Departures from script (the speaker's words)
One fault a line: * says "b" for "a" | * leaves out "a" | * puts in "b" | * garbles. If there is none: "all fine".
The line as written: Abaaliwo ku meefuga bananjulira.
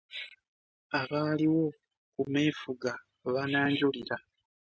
all fine